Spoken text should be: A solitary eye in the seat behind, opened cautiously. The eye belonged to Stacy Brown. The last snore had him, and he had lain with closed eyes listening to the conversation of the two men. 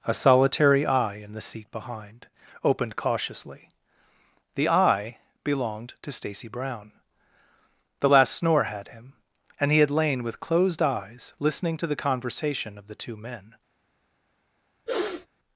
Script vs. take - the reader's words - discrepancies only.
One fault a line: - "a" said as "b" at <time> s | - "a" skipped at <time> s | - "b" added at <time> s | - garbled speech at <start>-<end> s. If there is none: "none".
none